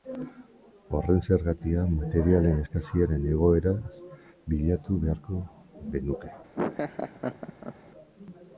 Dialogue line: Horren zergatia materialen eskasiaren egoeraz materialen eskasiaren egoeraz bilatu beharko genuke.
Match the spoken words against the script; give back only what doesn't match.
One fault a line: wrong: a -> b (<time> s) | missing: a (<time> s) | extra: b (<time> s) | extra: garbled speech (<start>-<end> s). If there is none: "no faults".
missing: materialen eskasiaren egoeraz (3.8 s)